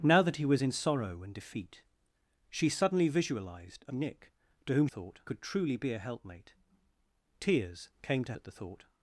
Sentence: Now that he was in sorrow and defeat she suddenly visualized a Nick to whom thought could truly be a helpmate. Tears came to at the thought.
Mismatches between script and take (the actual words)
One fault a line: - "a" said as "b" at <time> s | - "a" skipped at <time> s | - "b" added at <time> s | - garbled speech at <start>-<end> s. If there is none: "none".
none